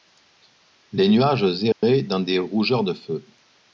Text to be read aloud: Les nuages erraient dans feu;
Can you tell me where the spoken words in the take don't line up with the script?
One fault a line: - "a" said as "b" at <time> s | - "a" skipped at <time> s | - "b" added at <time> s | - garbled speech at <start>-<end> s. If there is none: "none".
- "des rougeurs de" added at 2.2 s